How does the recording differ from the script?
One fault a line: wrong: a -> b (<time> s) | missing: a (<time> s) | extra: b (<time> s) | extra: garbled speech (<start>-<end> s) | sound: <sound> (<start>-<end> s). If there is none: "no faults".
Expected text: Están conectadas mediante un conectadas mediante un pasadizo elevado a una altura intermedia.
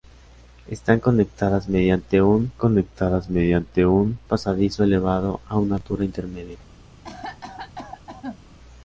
sound: cough (7.0-8.4 s)